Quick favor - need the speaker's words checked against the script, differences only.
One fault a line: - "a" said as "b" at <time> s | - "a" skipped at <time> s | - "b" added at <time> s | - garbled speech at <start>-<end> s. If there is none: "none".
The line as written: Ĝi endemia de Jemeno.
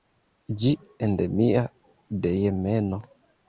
none